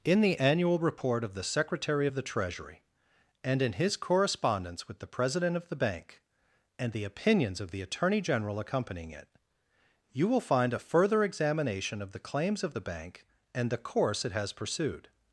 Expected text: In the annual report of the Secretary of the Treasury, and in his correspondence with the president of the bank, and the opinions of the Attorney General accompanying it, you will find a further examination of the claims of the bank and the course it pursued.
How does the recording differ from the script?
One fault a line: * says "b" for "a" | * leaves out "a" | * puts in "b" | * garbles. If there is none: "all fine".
* puts in "has"